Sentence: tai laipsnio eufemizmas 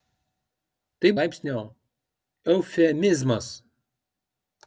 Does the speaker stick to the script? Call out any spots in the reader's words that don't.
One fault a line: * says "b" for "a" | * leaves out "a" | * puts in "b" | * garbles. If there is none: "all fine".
all fine